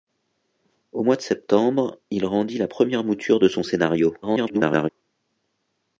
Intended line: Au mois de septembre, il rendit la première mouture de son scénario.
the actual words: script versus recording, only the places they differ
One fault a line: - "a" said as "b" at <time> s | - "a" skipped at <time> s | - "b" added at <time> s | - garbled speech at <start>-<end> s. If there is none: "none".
- garbled speech at 4.2-4.9 s